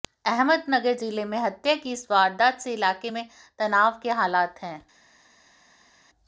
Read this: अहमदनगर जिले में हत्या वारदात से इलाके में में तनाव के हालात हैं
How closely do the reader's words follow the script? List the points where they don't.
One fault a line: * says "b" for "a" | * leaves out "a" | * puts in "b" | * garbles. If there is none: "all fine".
* puts in "की इस"
* leaves out "में"